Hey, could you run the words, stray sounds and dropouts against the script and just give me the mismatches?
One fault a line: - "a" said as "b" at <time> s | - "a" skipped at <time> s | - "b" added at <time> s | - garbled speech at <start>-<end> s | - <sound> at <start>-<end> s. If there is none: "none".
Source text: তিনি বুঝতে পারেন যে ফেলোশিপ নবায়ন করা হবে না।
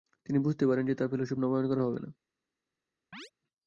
- "তার" added at 0.9 s
- chirp at 3.1-3.3 s